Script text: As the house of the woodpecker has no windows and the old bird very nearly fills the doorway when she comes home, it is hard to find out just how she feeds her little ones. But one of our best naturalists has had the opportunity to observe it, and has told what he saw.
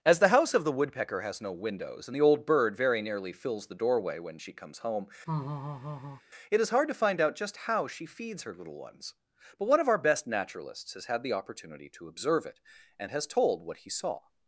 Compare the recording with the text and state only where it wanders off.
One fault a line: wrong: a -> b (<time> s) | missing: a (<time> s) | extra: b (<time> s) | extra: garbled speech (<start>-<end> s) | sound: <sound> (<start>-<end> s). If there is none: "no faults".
sound: laugh (5.3-6.2 s)